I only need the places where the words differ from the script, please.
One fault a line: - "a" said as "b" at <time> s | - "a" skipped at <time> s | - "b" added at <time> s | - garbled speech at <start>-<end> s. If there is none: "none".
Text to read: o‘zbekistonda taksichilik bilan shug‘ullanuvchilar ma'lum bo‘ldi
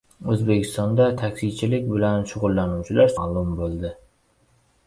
none